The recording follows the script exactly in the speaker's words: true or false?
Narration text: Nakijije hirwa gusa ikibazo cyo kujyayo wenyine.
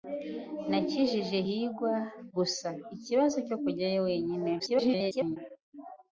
false